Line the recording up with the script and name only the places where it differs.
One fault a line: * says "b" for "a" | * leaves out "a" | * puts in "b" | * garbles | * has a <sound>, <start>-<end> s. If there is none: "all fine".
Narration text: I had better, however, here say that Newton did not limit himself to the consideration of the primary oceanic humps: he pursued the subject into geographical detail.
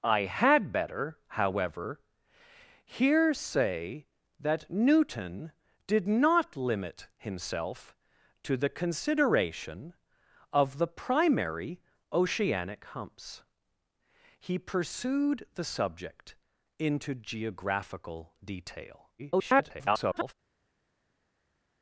* garbles